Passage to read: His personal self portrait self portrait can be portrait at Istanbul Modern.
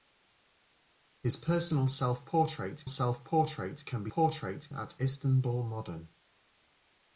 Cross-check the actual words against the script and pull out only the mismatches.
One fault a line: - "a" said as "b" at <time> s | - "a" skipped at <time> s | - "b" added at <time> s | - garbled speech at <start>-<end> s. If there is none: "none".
none